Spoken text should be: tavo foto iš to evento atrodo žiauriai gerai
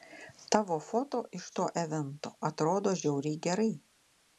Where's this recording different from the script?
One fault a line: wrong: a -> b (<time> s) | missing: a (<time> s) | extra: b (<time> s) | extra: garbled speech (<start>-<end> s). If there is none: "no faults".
no faults